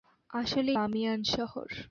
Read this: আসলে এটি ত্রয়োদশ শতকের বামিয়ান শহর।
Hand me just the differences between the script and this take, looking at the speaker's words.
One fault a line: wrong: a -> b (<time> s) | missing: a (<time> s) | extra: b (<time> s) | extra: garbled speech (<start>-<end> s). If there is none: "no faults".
missing: এটি ত্রয়োদশ শতকের (0.7 s)